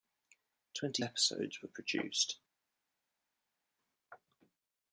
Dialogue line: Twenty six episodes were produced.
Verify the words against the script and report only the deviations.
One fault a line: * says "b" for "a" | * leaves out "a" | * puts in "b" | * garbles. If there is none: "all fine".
* leaves out "six"